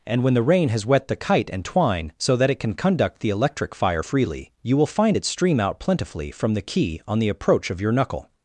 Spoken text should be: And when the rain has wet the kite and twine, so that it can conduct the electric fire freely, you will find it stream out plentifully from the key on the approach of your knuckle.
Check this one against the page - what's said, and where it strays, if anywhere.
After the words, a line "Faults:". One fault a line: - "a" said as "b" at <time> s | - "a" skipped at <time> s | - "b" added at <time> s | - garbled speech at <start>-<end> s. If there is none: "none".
And when the rain has wet the kite and twine, so that it can conduct the electric fire freely, you will find it stream out plentifully from the key on the approach of your knuckle.
Faults:
none